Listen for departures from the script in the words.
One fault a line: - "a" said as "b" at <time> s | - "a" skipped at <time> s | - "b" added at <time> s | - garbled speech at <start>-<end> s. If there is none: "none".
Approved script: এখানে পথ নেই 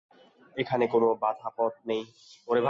- "কোনো বাঁধা" added at 0.9 s